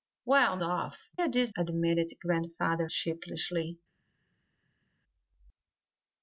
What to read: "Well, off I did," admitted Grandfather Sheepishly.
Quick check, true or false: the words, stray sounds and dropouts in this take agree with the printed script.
true